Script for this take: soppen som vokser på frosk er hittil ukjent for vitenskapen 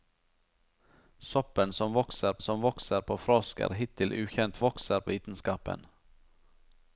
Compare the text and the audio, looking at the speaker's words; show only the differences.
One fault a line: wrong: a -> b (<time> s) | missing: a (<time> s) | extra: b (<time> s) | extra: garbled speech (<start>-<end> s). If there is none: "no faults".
extra: som vokser (2.4 s)
wrong: for -> vokser (4.6 s)